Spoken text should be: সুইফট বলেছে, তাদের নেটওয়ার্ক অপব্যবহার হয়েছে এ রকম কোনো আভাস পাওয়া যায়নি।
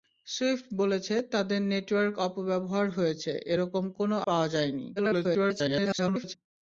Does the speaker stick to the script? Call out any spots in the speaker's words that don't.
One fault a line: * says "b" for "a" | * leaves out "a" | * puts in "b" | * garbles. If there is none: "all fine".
* leaves out "আভাস"
* garbles